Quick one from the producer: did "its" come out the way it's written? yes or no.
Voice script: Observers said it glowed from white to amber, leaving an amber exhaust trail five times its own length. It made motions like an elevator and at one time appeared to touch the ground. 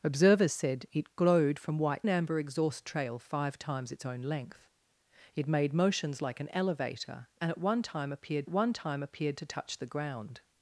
yes